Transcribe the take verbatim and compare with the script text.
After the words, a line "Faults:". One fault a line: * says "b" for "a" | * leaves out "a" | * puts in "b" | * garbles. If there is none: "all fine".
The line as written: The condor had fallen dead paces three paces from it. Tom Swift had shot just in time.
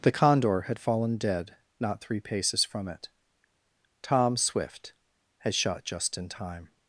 The condor had fallen dead not three paces from it. Tom Swift had shot just in time.
Faults:
* says "not" for "paces"